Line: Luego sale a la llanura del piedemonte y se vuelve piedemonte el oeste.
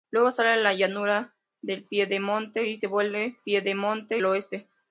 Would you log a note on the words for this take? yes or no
no